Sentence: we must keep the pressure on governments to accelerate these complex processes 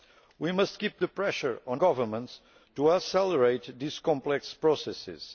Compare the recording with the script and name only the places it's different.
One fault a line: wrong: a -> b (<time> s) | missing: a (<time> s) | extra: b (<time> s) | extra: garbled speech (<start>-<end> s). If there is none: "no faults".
no faults